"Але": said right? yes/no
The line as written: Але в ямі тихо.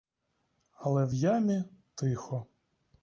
yes